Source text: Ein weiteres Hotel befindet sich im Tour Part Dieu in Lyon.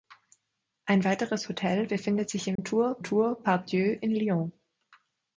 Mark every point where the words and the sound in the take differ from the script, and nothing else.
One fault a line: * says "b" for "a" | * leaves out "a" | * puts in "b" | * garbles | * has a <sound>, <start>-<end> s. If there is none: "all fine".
* has a dropout, 2.6-2.6 s
* puts in "Tour"